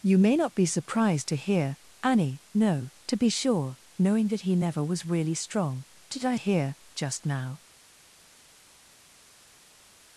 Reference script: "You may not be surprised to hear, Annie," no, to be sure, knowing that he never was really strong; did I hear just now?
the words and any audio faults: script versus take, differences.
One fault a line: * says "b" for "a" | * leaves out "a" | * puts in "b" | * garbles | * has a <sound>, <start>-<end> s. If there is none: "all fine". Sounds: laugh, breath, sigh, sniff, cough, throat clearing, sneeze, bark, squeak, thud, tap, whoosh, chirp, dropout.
all fine